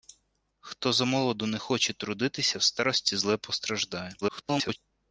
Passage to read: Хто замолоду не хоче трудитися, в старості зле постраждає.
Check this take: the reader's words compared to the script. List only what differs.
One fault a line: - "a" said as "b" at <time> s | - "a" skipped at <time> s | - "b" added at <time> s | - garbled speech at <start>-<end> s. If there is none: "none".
- garbled speech at 4.2-4.8 s